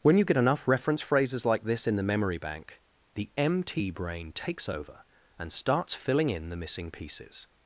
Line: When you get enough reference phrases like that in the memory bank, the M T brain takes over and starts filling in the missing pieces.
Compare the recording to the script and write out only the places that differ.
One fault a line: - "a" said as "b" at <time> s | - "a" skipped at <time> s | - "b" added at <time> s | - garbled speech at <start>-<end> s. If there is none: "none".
- "that" said as "this" at 1.6 s